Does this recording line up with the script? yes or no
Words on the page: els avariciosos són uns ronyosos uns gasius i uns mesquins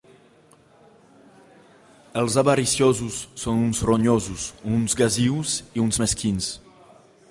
yes